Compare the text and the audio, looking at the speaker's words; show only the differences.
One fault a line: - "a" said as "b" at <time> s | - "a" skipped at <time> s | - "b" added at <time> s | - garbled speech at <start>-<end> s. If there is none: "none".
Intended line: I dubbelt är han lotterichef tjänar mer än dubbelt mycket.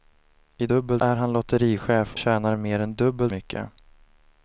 none